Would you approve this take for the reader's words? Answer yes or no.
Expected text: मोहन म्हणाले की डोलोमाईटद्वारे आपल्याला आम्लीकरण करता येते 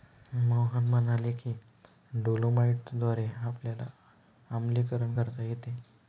yes